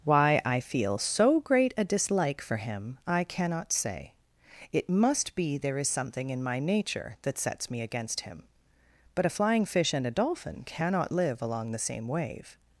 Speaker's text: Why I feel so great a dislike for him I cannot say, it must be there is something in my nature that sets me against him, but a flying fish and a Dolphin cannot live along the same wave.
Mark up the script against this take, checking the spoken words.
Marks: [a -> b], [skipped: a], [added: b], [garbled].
Why I feel so great a dislike for him I cannot say, it must be there is something in my nature that sets me against him, but a flying fish and a Dolphin cannot live along the same wave.